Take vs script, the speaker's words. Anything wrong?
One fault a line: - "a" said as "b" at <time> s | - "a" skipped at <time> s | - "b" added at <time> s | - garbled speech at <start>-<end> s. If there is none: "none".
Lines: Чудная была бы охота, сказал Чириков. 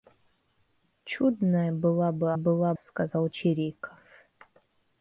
- "охота" said as "была" at 2.3 s